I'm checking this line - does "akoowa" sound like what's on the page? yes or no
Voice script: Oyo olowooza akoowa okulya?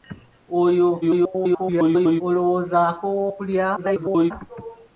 yes